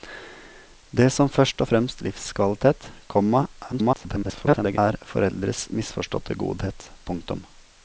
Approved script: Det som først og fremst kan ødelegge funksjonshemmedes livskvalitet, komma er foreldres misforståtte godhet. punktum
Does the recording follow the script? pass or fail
fail